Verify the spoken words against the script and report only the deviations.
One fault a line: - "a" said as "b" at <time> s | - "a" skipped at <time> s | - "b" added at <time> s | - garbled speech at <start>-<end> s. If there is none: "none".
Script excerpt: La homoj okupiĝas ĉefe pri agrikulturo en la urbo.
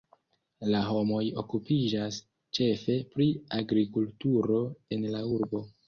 none